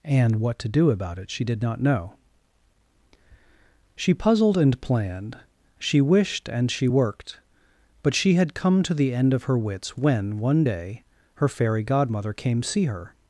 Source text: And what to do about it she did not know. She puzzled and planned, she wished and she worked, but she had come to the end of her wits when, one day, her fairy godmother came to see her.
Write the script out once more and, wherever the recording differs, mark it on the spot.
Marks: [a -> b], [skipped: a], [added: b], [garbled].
And what to do about it she did not know. She puzzled and planned, she wished and she worked, but she had come to the end of her wits when, one day, her fairy godmother came [skipped: to] see her.